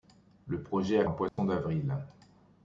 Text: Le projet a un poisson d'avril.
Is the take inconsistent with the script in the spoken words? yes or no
no